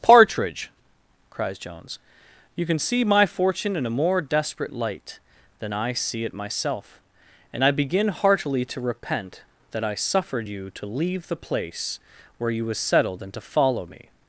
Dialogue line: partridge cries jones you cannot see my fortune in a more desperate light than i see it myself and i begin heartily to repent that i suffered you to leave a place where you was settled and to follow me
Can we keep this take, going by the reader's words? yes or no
no